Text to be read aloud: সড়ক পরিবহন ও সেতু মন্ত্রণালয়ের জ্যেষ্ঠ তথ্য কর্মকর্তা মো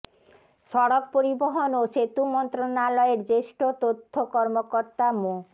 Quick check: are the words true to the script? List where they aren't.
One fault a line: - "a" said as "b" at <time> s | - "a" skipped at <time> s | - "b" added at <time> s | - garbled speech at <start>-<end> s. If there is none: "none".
none